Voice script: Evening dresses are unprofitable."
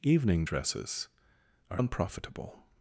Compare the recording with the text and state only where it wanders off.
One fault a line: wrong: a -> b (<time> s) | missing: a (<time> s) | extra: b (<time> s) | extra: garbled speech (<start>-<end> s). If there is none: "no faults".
no faults